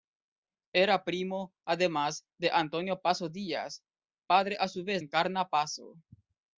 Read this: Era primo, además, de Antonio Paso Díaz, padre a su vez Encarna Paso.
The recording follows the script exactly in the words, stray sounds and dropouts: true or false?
true